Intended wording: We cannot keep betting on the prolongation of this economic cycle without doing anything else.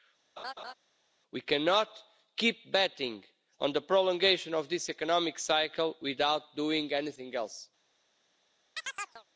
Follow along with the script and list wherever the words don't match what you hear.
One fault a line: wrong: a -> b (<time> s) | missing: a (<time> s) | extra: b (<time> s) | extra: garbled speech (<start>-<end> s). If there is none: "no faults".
no faults